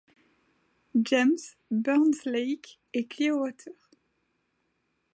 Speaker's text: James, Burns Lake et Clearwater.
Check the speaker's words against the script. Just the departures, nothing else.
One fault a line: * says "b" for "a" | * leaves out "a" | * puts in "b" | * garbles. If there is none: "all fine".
all fine